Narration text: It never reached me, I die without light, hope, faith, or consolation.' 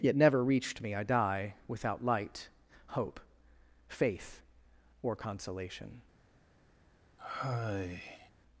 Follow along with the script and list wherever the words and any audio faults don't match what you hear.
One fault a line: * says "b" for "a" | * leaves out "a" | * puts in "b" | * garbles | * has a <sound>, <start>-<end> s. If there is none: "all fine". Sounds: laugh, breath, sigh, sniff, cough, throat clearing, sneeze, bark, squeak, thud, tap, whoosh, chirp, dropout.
* says "Yet" for "It"
* has a sigh, 7.2-8.3 s